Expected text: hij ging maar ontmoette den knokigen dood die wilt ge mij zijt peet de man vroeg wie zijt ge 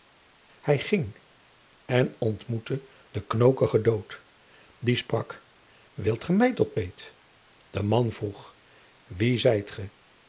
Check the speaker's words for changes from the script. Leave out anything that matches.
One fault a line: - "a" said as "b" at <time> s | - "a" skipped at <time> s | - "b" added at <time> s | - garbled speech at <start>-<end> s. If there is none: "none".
- "maar" said as "en" at 1.9 s
- "sprak" added at 5.0 s
- "zijt" said as "tot" at 6.5 s